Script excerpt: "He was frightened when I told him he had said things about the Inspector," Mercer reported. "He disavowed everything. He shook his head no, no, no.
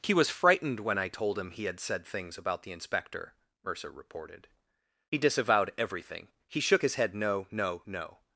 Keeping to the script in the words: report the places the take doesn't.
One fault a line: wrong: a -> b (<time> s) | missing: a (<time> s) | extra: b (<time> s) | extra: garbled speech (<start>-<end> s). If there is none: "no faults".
no faults